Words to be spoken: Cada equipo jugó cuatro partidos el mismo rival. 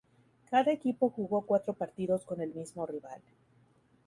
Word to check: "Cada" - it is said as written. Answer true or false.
true